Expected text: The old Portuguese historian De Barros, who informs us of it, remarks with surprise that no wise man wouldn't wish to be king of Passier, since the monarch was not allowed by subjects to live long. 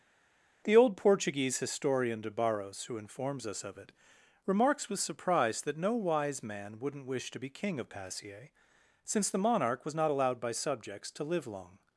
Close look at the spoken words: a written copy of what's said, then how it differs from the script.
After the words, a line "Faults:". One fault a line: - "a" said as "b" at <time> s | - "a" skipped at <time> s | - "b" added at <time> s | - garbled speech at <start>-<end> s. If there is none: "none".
The old Portuguese historian De Barros, who informs us of it, remarks with surprise that no wise man wouldn't wish to be king of Passier, since the monarch was not allowed by subjects to live long.
Faults:
none